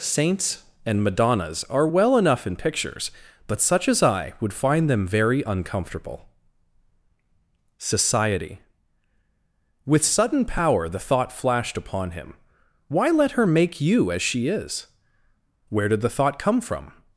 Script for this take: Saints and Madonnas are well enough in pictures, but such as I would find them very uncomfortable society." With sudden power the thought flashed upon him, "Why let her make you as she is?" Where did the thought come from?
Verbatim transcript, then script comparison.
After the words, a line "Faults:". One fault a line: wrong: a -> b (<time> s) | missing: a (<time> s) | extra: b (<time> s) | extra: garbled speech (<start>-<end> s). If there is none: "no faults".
Saints and Madonnas are well enough in pictures, but such as I would find them very uncomfortable society." With sudden power the thought flashed upon him, "Why let her make you as she is?" Where did the thought come from?
Faults:
no faults